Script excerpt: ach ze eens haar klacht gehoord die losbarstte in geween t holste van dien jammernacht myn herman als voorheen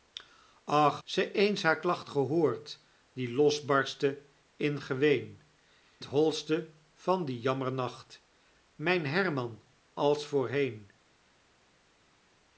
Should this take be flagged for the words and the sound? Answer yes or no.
no